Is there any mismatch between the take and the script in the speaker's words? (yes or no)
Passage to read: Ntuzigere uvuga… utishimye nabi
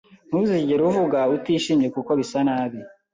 yes